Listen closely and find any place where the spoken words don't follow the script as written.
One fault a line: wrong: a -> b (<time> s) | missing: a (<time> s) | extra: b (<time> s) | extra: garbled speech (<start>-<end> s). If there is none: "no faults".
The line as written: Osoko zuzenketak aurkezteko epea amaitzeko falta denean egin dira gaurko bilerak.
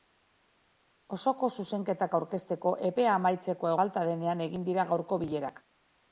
no faults